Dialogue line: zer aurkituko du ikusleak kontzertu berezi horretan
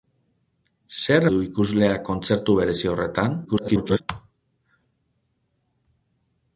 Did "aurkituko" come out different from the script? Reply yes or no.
yes